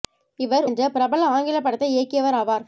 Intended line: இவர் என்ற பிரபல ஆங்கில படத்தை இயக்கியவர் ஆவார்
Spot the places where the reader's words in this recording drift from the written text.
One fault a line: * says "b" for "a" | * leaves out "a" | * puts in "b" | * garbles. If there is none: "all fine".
all fine